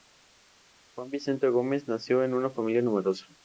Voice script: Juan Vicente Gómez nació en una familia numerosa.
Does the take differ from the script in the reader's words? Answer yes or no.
no